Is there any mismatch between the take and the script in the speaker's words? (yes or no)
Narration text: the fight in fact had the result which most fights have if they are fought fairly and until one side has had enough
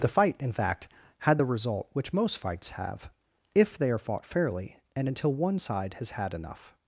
no